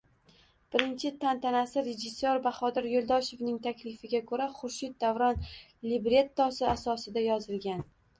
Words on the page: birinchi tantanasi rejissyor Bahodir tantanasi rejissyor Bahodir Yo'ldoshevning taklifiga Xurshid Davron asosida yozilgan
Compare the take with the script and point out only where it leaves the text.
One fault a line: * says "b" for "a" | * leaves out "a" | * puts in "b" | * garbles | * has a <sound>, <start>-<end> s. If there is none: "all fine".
* leaves out "tantanasi rejissyor Bahodir"
* puts in "ko'ra"
* puts in "librettosi"